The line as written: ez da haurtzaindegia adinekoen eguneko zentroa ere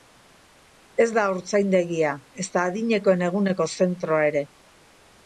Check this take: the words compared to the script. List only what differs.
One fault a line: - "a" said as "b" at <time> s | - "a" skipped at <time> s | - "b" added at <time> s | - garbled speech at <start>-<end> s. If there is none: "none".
- "ezta" added at 2.4 s